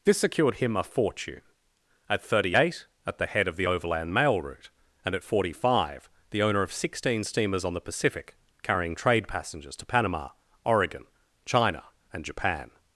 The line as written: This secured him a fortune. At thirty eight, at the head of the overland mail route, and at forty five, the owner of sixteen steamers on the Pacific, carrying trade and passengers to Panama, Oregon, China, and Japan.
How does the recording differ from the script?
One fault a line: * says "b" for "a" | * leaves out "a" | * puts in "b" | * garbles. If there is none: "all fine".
* leaves out "and"